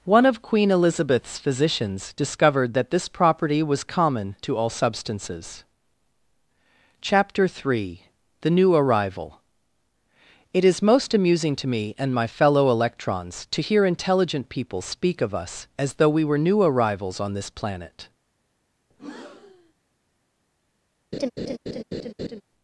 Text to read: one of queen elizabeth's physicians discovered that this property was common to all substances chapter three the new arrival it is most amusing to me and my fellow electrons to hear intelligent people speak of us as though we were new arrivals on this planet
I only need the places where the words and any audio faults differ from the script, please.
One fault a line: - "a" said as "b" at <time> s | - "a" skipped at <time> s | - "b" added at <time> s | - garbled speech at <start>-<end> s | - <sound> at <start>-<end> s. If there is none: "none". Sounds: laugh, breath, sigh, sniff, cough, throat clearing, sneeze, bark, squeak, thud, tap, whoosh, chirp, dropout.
- breath at 18.9-19.7 s
- laugh at 21.1-22.4 s